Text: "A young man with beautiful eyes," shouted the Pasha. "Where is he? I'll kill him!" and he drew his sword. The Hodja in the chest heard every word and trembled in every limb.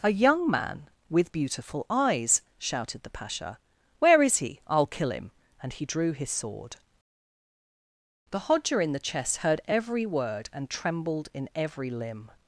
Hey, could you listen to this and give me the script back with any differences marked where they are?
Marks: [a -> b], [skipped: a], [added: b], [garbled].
"A young man with beautiful eyes," shouted the Pasha. "Where is he? I'll kill him!" and he drew his sword. The Hodja in the chest heard every word and trembled in every limb.